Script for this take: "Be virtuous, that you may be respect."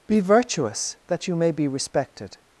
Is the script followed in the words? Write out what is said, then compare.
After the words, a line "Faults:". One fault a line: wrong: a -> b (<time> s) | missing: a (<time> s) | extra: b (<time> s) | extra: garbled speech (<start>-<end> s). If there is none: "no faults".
"Be virtuous, that you may be respected."
Faults:
wrong: respect -> respected (1.7 s)